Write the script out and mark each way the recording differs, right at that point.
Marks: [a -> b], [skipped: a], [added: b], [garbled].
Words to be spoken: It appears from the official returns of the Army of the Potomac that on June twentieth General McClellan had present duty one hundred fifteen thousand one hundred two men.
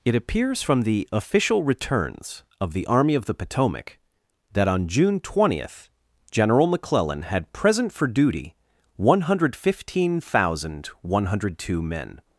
It appears from the official returns of the Army of the Potomac that on June twentieth General McClellan had present [added: for] duty one hundred fifteen thousand one hundred two men.